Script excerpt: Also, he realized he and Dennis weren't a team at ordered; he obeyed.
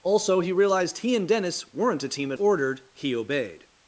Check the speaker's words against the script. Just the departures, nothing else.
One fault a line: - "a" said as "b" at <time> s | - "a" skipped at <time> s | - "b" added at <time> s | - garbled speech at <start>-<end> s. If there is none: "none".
none